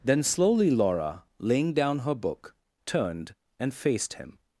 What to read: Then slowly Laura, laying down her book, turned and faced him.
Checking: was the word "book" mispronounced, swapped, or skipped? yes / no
no